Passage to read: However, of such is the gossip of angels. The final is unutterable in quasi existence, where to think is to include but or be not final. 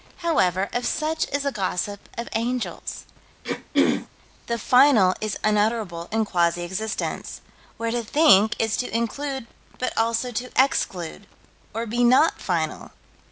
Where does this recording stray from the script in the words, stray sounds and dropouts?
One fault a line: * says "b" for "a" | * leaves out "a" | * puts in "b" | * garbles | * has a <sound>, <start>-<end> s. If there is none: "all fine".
* has a throat clearing, 3.4-4.1 s
* puts in "also to exclude"